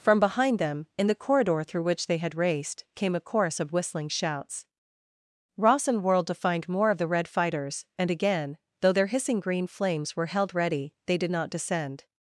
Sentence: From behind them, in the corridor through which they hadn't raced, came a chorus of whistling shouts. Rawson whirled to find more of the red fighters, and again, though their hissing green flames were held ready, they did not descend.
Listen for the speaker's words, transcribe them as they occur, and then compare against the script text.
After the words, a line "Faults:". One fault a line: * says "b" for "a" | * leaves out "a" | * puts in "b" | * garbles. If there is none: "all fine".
From behind them, in the corridor through which they had raced, came a chorus of whistling shouts. Rawson whirled to find more of the red fighters, and again, though their hissing green flames were held ready, they did not descend.
Faults:
* says "had" for "hadn't"